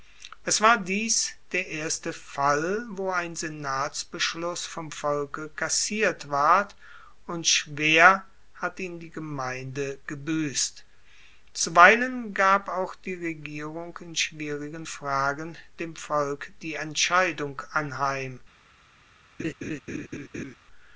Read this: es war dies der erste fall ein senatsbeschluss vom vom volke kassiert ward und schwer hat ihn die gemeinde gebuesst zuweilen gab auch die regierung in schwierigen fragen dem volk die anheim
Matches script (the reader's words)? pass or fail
fail